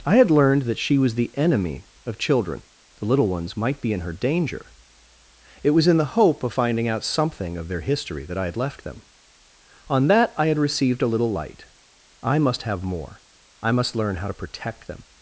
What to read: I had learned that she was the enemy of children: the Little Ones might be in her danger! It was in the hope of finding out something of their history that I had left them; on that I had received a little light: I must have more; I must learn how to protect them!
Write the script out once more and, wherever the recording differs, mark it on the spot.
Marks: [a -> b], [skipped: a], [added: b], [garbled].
I had learned that she was the enemy of children: the Little Ones might be in her danger! It was in the hope of finding out something of their history that I had left them; on that I had received a little light: I must have more; I must learn how to protect them!